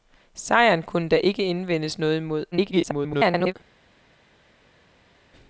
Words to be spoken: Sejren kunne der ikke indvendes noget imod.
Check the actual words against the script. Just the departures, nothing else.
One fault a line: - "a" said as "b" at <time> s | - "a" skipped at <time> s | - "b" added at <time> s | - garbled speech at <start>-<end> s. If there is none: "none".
- garbled speech at 2.5-3.5 s